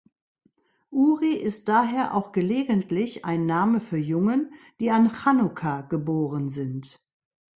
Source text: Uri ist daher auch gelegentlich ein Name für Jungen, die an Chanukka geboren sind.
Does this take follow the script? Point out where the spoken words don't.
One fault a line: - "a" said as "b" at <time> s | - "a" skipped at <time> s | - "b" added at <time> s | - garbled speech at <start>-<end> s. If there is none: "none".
none